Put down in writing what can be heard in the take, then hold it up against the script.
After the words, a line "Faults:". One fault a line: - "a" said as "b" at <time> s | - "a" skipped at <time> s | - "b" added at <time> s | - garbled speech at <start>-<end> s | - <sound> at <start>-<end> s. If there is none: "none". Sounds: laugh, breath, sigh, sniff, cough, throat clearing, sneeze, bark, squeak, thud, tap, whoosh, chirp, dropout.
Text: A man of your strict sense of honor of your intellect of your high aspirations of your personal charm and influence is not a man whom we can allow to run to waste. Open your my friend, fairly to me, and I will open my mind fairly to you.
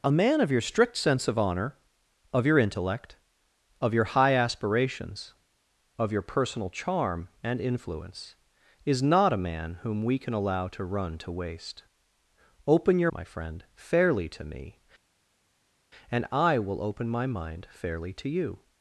A man of your strict sense of honor of your intellect of your high aspirations of your personal charm and influence is not a man whom we can allow to run to waste. Open your my friend, fairly to me, and I will open my mind fairly to you.
Faults:
none